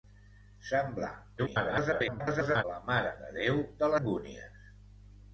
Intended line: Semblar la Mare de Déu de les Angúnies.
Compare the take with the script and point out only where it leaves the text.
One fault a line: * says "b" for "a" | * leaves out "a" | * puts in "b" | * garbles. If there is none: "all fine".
* garbles
* leaves out "les"